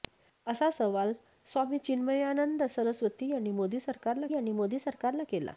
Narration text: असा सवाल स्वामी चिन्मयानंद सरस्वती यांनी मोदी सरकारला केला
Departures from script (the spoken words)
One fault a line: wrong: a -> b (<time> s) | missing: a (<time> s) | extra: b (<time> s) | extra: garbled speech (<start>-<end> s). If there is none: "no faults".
extra: यांनी मोदी सरकारला (4.3 s)